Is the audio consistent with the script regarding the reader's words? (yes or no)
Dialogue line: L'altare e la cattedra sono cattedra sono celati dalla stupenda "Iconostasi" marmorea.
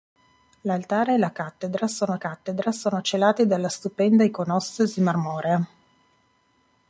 yes